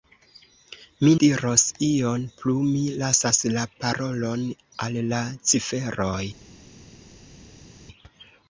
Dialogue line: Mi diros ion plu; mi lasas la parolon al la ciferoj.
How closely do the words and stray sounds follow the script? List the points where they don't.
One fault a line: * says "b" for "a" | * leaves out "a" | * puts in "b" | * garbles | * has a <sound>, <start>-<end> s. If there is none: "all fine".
all fine